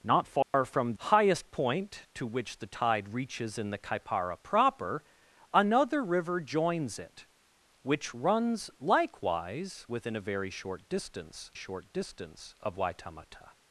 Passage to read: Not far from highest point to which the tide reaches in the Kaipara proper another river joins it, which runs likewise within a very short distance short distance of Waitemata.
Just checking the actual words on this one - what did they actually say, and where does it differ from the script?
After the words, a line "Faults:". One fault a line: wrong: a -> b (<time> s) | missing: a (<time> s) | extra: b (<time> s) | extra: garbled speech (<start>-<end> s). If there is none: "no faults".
Not far from highest point to which the tide reaches in the Kaipara proper another river joins it, which runs likewise within a very short distance short distance of Waitemata.
Faults:
no faults